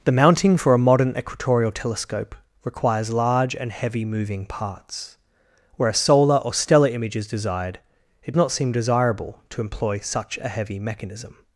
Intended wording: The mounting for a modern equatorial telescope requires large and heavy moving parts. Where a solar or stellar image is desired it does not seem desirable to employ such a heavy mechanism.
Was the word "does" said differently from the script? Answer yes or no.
yes